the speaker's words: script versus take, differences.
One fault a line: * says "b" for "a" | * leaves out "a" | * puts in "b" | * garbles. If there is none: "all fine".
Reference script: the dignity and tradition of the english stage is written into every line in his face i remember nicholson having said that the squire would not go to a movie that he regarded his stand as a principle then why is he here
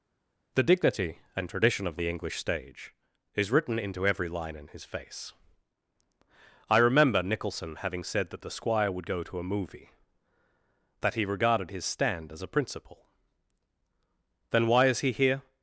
* leaves out "not"